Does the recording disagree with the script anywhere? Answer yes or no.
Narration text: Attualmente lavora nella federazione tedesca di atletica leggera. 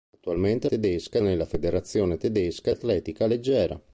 yes